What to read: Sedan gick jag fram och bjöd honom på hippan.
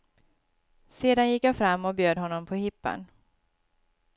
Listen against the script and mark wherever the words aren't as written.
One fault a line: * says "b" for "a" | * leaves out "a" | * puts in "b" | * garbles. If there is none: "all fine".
all fine